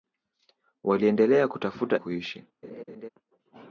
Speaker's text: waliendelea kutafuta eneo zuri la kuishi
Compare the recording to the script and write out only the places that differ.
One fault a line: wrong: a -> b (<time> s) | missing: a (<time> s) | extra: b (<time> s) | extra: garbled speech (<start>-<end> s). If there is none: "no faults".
missing: eneo zuri la (2.0 s)